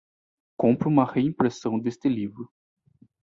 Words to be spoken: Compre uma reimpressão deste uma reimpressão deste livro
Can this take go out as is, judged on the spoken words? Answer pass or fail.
fail